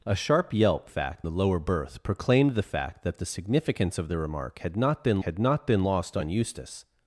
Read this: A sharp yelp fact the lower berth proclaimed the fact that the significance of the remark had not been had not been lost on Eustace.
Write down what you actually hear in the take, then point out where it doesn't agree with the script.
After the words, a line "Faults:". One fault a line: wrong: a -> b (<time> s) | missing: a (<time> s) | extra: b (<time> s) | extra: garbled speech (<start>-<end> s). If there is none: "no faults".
A sharp yelp fact the lower berth proclaimed the fact that the significance of the remark had not been had not been lost on Eustace.
Faults:
no faults